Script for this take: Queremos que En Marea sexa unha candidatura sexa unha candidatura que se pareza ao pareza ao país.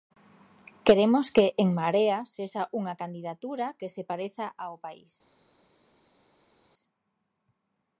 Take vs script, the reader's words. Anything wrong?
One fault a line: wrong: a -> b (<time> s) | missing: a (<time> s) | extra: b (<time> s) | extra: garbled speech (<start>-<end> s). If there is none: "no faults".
missing: sexa unha candidatura (3.7 s)
missing: pareza ao (4.8 s)